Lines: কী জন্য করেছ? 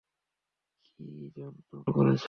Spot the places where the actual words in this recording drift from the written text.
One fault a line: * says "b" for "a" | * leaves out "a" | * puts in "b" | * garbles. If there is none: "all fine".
all fine